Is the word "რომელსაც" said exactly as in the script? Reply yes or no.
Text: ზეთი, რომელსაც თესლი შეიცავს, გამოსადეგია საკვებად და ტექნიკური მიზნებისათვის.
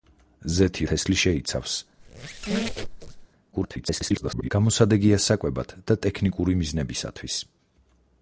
no